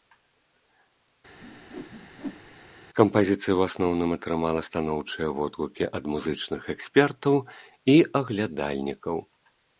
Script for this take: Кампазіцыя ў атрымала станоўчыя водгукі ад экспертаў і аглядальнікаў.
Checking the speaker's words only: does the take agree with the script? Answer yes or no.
no